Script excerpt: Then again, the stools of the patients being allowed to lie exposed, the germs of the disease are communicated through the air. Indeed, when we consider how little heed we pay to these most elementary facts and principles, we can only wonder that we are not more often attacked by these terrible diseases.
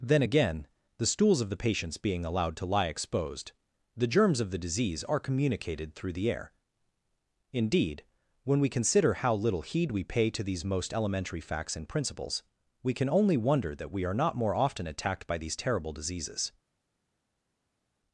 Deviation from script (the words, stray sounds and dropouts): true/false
false